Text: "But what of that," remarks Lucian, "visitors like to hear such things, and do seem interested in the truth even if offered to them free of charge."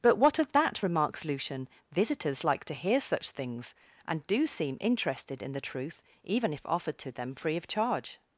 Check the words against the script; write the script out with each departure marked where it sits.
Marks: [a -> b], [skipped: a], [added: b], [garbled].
"But what of that," remarks Lucian, "visitors like to hear such things, and do seem interested in the truth even if offered to them free of charge."